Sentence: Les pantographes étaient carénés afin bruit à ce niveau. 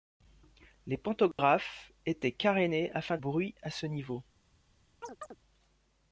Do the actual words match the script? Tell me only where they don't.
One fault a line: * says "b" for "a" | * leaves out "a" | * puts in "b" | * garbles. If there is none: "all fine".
all fine